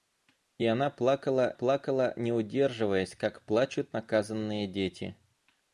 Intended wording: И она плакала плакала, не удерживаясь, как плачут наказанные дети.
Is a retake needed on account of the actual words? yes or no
no